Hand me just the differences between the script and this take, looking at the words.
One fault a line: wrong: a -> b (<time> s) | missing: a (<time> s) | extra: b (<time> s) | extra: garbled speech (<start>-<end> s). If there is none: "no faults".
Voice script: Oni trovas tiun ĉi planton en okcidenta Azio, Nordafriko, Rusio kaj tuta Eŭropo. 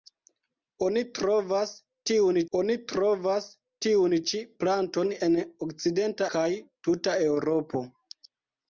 extra: oni trovas tiun (2.6 s)
missing: Azio Nordafriko Rusio (6.3 s)